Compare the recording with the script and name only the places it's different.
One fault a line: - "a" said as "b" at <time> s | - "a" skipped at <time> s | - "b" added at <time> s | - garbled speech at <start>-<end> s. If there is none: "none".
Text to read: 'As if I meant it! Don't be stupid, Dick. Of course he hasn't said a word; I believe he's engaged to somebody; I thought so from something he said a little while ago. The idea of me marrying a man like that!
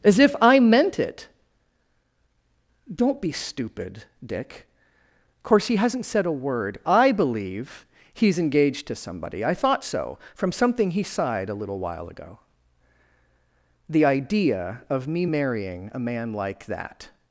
- "said" said as "sighed" at 11.0 s